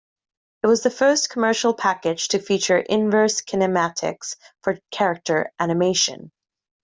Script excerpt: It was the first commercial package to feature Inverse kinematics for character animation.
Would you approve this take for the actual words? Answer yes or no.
yes